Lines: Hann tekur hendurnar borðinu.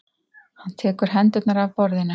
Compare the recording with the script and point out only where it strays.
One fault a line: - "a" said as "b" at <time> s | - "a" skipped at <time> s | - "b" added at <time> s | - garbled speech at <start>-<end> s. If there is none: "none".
- "af" added at 1.6 s